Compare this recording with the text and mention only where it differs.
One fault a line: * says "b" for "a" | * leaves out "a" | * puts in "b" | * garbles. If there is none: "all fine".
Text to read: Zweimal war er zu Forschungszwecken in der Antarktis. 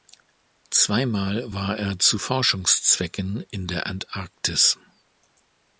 all fine